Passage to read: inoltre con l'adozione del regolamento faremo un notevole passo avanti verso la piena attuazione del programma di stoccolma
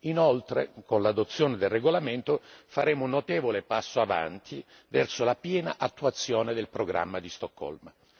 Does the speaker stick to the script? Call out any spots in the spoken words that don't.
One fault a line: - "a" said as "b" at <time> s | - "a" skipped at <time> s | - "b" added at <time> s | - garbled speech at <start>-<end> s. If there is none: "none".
none